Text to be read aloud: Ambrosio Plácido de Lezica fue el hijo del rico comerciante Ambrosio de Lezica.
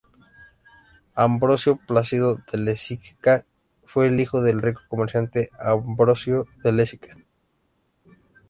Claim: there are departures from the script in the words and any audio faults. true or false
false